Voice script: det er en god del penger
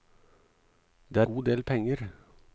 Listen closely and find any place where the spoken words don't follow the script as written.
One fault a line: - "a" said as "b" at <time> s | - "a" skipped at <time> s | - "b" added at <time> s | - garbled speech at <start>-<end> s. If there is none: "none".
- "en" skipped at 1.2 s